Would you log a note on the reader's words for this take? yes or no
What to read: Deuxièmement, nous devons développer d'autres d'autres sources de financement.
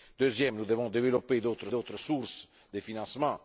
no